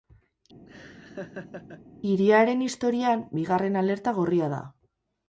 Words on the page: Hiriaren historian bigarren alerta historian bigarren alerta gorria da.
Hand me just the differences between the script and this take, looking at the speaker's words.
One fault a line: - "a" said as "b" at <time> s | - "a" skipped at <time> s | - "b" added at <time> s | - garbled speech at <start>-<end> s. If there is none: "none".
- "historian bigarren alerta" skipped at 4.2 s